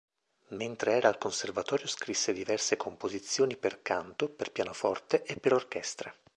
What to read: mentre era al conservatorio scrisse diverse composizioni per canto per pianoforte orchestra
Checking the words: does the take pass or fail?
fail